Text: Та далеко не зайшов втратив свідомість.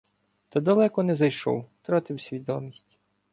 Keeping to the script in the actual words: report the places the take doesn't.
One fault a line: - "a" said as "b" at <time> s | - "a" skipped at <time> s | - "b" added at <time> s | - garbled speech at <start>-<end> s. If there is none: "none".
none